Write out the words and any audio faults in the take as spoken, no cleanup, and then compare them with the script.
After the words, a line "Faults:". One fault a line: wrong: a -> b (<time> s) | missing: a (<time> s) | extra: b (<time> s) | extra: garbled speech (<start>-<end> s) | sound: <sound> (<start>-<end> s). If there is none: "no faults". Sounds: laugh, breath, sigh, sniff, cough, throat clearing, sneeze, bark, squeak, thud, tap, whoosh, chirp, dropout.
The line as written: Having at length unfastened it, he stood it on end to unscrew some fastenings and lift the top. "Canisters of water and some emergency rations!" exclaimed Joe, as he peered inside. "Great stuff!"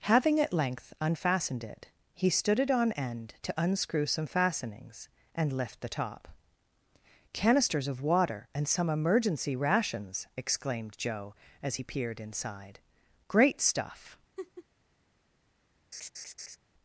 Having at length unfastened it, he stood it on end to unscrew some fastenings and lift the top. "Canisters of water and some emergency rations!" exclaimed Joe, as he peered inside. "Great stuff!"
Faults:
sound: laugh (14.4-14.7 s)
sound: laugh (15.9-16.6 s)